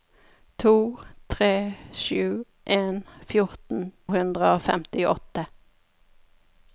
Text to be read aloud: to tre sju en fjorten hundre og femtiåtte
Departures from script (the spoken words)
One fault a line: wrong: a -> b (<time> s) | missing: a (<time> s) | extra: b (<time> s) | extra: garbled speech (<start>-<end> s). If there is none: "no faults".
no faults